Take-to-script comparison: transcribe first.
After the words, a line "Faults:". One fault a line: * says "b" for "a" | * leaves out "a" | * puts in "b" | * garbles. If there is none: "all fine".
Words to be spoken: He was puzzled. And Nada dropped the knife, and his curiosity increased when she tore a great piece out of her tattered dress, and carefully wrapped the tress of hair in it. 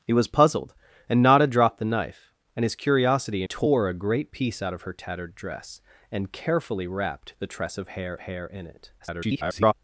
He was puzzled. And Nada dropped the knife, and his curiosity tore a great piece out of her tattered dress, and carefully wrapped the tress of hair hair in it. [garbled]
Faults:
* leaves out "increased when she"
* puts in "hair"
* garbles